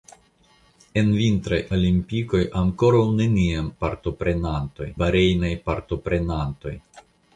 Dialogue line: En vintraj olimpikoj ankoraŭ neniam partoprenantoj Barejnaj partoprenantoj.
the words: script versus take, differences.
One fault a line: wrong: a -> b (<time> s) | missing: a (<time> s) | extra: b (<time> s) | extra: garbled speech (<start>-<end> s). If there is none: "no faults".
no faults